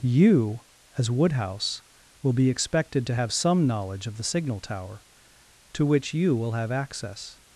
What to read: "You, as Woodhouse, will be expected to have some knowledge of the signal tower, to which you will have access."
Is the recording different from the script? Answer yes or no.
no